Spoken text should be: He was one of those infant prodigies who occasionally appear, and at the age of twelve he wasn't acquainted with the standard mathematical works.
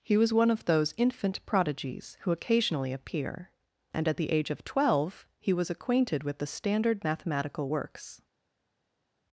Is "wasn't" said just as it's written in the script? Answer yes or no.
no